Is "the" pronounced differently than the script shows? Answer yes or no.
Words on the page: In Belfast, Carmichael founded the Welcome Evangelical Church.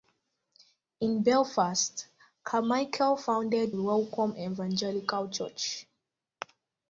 yes